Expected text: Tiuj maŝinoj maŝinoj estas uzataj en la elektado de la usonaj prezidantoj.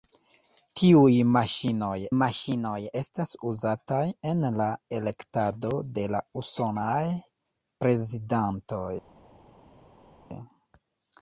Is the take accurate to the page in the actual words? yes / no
yes